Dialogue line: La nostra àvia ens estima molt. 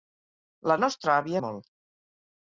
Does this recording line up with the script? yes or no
no